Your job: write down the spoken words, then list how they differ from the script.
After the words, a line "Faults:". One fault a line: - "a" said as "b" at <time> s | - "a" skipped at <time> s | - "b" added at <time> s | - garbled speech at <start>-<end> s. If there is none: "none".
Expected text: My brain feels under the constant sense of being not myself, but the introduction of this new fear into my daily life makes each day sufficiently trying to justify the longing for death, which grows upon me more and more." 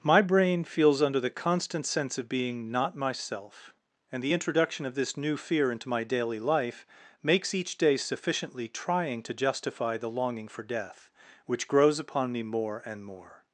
My brain feels under the constant sense of being not myself, and the introduction of this new fear into my daily life makes each day sufficiently trying to justify the longing for death, which grows upon me more and more."
Faults:
- "but" said as "and" at 4.1 s